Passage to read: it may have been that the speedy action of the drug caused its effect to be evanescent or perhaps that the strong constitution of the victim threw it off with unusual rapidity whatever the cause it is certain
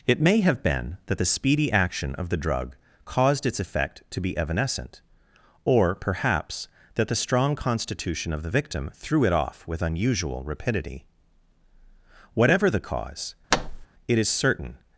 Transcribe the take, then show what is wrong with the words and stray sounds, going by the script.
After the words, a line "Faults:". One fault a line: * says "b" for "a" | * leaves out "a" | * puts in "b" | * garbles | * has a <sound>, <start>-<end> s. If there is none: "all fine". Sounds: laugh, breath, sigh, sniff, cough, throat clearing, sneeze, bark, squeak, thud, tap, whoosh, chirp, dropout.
it may have been that the speedy action of the drug caused its effect to be evanescent or perhaps that the strong constitution of the victim threw it off with unusual rapidity whatever the cause it is certain
Faults:
* has a thud, 13.5-13.9 s